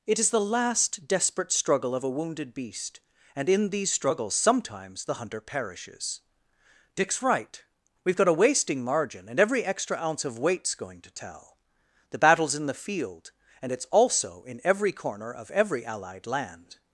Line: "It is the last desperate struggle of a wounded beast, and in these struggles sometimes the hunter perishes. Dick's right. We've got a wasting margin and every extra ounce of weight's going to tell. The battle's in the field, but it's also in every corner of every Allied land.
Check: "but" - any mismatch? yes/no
yes